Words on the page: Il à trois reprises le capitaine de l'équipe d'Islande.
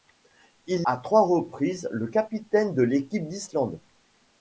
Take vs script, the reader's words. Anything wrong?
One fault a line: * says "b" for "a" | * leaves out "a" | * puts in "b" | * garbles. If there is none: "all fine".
all fine